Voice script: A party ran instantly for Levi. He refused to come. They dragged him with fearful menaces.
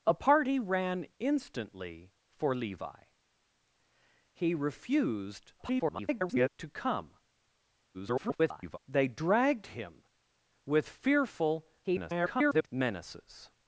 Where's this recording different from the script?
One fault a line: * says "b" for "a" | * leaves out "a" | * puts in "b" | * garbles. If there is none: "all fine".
* garbles
* garbles
* garbles